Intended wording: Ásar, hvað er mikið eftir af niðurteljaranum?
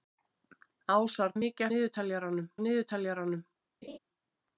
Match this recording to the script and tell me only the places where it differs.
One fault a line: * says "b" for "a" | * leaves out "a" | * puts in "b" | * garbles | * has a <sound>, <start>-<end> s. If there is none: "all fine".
* leaves out "hvað"
* says "niðurteljaranum" for "eftir"
* has a laugh, 3.8-4.0 s